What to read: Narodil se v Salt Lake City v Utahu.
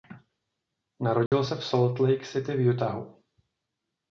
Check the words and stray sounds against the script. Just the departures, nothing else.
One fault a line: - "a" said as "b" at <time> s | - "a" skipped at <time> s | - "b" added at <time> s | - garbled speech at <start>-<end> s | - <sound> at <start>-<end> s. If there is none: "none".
- dropout at 1.3-1.3 s